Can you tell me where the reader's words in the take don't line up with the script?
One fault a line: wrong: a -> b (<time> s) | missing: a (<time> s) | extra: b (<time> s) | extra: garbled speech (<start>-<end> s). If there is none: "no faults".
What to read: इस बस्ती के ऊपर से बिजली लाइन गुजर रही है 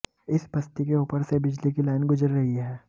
extra: की (1.7 s)